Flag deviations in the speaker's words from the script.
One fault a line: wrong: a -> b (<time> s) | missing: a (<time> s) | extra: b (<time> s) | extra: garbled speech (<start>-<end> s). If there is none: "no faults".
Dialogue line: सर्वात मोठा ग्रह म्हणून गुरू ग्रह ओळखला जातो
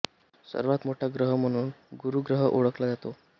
no faults